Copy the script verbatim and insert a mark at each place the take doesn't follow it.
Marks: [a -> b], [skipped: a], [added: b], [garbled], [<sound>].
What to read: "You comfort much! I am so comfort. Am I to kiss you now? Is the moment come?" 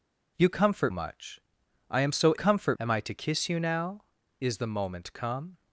"You comfort much! I am so comfort. Am I to kiss you now? Is the moment come?"